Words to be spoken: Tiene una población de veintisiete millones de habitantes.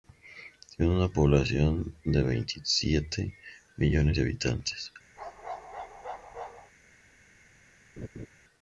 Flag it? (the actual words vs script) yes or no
no